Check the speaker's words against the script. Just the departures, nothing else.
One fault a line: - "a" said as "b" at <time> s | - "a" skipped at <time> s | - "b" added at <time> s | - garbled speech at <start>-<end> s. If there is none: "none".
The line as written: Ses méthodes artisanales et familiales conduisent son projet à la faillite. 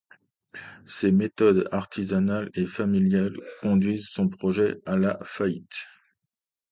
none